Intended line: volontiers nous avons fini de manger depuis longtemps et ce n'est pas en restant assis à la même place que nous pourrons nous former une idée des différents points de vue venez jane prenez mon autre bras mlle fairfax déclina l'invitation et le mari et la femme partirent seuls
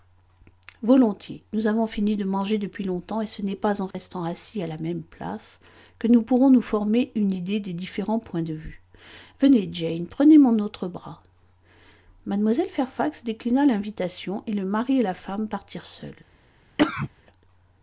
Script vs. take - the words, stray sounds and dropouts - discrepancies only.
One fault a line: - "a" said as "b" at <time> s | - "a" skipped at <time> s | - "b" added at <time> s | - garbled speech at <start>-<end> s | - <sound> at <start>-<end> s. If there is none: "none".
- dropout at 3.9-3.9 s
- cough at 16.8-17.1 s